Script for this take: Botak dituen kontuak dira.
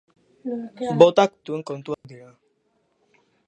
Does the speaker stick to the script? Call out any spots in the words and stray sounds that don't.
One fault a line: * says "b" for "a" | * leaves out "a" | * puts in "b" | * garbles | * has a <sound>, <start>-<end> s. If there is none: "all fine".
* has a dropout, 1.9-2.0 s